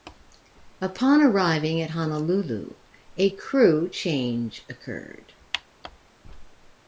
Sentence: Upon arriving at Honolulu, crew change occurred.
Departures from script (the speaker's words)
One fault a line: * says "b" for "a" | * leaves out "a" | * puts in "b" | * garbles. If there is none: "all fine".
* puts in "a"